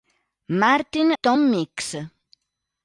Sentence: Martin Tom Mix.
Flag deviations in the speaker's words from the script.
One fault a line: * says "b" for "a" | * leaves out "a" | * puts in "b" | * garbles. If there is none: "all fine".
all fine